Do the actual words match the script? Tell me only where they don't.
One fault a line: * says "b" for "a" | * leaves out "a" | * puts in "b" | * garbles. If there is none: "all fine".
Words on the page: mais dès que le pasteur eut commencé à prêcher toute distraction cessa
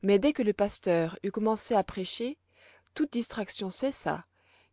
all fine